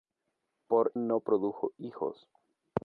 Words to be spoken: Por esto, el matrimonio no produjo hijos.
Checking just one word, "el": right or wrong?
wrong